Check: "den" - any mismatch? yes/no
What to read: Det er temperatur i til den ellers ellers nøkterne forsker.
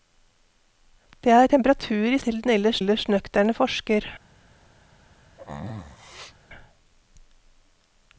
no